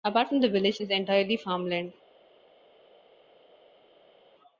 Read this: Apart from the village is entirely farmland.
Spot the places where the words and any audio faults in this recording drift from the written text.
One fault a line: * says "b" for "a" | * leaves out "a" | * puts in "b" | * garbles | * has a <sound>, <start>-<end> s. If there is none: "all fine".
all fine